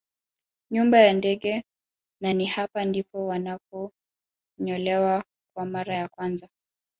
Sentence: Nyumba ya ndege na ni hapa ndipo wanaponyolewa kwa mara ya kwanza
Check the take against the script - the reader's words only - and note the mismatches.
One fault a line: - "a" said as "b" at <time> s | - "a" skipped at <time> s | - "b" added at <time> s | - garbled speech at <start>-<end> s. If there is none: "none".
none